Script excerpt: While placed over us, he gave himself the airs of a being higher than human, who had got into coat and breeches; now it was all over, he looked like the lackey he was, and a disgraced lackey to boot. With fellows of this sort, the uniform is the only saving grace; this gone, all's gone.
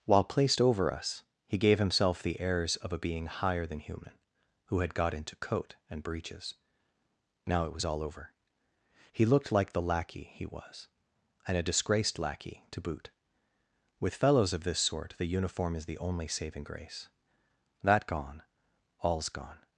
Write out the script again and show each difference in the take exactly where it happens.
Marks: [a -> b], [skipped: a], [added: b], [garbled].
While placed over us, he gave himself the airs of a being higher than human, who had got into coat and breeches; now it was all over, he looked like the lackey he was, and a disgraced lackey to boot. With fellows of this sort, the uniform is the only saving grace; [this -> that] gone, all's gone.